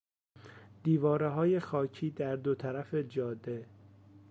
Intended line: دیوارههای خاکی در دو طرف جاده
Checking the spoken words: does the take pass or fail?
pass